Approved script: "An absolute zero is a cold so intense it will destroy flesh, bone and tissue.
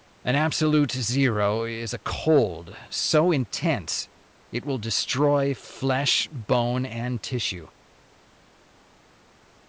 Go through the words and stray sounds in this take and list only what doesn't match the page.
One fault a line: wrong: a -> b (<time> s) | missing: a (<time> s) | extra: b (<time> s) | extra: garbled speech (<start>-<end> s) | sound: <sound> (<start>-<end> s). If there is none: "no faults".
no faults